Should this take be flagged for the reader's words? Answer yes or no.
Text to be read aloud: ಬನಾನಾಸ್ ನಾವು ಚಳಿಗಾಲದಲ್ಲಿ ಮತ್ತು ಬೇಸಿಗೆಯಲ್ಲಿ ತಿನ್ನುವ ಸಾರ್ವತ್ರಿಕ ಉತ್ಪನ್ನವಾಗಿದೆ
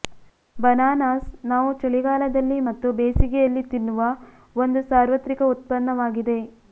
yes